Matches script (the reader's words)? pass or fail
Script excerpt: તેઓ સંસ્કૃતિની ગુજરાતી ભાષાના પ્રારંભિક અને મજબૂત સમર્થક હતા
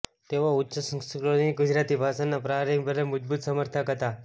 fail